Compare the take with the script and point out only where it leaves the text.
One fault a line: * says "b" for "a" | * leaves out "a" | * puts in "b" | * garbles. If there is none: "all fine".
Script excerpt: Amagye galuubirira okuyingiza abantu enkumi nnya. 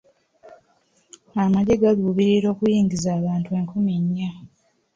all fine